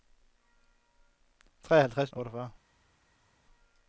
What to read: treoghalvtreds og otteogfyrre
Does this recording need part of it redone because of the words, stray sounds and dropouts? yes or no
no